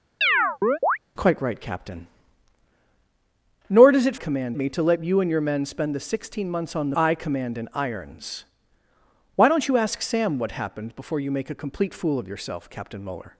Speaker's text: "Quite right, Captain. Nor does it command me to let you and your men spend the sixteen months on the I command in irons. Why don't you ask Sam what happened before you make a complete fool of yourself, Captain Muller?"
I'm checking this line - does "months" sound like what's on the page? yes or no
yes